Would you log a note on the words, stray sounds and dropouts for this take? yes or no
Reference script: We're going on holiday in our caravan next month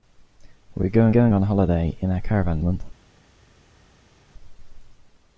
yes